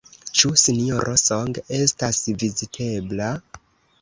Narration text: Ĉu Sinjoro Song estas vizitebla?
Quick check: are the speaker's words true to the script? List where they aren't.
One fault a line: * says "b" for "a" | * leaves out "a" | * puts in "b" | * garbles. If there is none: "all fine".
all fine